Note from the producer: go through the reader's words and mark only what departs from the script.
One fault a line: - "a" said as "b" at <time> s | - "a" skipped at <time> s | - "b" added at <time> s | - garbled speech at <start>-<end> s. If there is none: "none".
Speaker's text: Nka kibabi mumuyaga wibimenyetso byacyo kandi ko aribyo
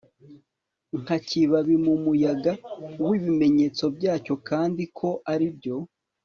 none